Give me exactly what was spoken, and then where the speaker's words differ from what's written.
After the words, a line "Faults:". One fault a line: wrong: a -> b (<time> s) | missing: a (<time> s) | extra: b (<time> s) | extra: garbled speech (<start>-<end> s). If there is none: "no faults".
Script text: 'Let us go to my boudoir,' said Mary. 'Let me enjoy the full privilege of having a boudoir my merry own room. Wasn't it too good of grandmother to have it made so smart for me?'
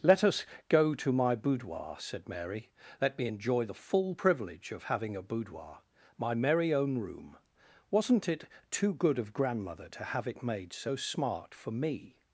'Let us go to my boudoir,' said Mary. 'Let me enjoy the full privilege of having a boudoir my merry own room. Wasn't it too good of grandmother to have it made so smart for me?'
Faults:
no faults